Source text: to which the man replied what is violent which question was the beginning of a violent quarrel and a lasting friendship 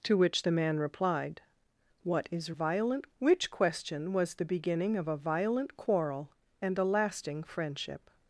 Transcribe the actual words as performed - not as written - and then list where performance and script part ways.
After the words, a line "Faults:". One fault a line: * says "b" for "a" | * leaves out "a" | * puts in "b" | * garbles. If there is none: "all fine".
to which the man replied what is violent which question was the beginning of a violent quarrel and a lasting friendship
Faults:
all fine